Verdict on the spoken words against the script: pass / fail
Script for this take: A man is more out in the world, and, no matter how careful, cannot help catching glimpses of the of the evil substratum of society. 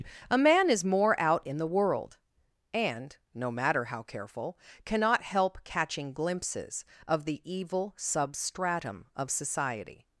fail